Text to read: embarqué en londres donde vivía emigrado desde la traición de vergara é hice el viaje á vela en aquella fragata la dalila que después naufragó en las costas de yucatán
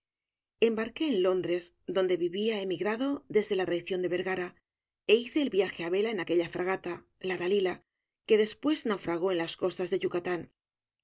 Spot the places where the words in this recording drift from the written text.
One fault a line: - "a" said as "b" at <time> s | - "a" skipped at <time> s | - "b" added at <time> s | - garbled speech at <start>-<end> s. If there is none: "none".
none